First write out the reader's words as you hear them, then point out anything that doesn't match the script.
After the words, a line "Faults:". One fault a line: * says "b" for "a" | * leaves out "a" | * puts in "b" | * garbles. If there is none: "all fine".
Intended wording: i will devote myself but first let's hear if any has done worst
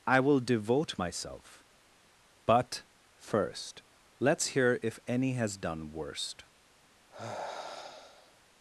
i will devote myself but first let's hear if any has done worst
Faults:
all fine